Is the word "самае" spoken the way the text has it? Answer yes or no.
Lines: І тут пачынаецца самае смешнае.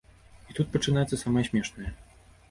yes